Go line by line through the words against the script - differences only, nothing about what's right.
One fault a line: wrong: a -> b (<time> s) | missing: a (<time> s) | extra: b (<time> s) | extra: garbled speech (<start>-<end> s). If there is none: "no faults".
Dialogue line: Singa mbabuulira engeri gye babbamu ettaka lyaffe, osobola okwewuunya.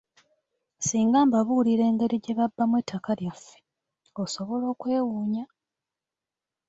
no faults